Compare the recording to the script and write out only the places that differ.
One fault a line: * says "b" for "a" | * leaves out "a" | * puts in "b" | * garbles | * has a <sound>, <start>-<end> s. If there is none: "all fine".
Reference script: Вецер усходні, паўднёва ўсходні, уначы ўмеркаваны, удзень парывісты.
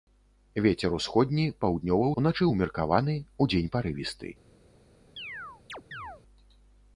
* leaves out "ўсходні"
* has a chirp, 5.2-6.2 s